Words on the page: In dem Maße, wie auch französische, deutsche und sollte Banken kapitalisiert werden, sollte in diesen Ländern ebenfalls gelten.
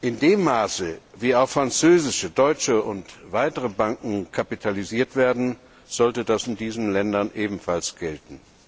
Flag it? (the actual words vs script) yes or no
yes